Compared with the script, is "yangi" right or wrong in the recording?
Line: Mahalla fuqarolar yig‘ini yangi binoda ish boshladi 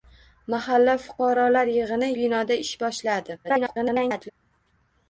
wrong